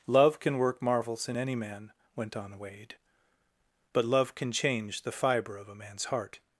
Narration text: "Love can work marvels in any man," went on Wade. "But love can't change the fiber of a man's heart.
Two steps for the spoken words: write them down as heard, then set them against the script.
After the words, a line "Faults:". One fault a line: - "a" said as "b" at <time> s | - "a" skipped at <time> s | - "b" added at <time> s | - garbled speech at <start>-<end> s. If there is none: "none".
"Love can work marvels in any man," went on Wade. "But love can change the fiber of a man's heart.
Faults:
- "can't" said as "can" at 4.4 s